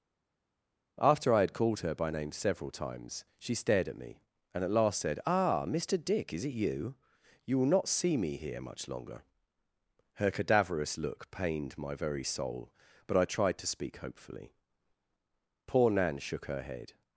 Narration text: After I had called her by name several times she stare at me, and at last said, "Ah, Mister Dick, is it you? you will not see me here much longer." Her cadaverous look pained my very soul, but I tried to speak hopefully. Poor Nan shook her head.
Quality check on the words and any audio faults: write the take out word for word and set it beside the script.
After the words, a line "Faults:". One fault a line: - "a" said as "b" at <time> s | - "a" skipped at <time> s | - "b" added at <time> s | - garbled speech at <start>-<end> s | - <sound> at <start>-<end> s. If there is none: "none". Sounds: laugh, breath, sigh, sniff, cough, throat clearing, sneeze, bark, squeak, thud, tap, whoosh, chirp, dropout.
After I had called her by name several times she stared at me, and at last said, "Ah, Mister Dick, is it you? you will not see me here much longer." Her cadaverous look pained my very soul, but I tried to speak hopefully. Poor Nan shook her head.
Faults:
- "stare" said as "stared" at 3.5 s